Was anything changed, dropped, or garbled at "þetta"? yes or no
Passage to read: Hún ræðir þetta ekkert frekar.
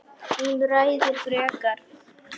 yes